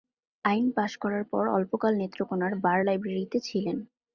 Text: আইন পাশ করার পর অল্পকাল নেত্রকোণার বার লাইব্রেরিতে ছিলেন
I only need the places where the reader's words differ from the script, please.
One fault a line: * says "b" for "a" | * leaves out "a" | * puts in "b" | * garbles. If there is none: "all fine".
all fine